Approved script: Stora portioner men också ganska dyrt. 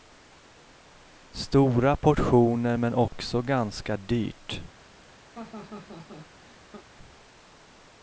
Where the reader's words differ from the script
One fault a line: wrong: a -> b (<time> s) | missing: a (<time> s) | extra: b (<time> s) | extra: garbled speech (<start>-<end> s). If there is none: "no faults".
no faults